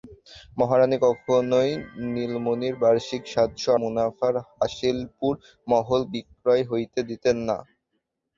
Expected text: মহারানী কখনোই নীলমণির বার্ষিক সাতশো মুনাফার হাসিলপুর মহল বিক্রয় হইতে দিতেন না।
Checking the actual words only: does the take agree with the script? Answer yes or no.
yes